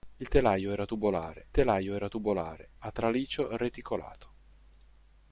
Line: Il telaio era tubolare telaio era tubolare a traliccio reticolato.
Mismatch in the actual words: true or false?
false